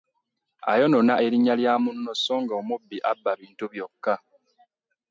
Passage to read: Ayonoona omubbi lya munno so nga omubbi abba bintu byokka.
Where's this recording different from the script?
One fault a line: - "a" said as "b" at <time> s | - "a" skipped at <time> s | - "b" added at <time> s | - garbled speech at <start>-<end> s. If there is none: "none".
- "omubbi" said as "erinnya" at 1.2 s